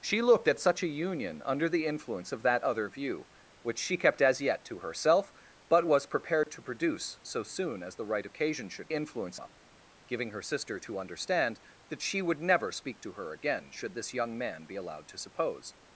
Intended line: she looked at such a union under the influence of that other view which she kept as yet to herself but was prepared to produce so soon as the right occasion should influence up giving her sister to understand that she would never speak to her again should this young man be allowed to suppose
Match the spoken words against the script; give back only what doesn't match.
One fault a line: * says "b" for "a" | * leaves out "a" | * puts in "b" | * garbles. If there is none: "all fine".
all fine